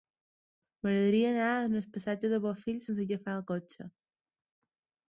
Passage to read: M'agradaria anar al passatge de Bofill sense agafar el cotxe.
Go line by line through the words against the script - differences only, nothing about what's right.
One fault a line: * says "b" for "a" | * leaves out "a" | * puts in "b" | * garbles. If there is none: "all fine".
all fine